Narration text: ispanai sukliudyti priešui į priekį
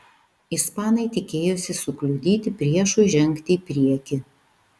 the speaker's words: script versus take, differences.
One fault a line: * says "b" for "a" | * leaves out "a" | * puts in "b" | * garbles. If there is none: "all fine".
* puts in "tikėjosi"
* puts in "žengti"